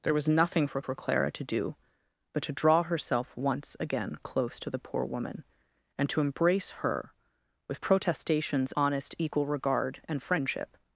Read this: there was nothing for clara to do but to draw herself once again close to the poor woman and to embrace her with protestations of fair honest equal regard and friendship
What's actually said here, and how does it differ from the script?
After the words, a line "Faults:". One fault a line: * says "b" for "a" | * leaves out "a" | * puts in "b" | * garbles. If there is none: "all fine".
there was nothing for for clara to do but to draw herself once again close to the poor woman and to embrace her with protestations honest equal regard and friendship
Faults:
* puts in "for"
* leaves out "of fair"